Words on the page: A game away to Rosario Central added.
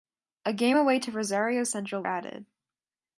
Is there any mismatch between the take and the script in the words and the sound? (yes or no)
no